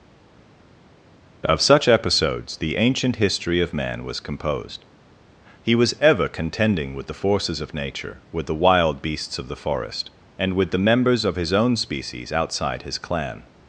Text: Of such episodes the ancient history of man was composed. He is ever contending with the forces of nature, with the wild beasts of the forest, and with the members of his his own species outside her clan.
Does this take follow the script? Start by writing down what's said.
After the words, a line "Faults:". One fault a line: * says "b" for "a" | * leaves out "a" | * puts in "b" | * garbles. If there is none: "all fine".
Of such episodes the ancient history of man was composed. He was ever contending with the forces of nature, with the wild beasts of the forest, and with the members of his own species outside his clan.
Faults:
* says "was" for "is"
* leaves out "his"
* says "his" for "her"